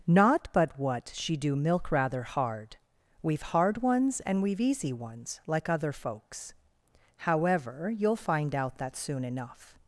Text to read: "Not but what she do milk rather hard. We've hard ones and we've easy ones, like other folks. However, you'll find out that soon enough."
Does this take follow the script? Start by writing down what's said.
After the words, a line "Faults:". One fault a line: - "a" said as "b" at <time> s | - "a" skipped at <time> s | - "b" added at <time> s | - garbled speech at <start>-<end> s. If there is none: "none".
"Not but what she do milk rather hard. We've hard ones and we've easy ones, like other folks. However, you'll find out that soon enough."
Faults:
none